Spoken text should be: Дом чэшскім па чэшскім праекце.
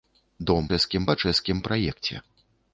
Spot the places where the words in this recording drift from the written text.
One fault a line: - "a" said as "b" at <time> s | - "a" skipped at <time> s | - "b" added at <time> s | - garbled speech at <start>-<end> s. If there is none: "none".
none